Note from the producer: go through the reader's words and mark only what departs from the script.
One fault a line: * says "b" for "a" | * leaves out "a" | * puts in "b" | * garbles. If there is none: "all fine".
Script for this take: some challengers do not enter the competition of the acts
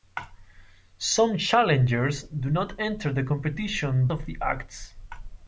all fine